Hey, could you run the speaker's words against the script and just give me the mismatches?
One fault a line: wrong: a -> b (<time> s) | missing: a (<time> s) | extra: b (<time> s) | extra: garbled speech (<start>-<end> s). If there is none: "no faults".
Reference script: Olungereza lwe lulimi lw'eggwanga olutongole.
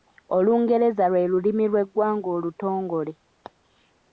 no faults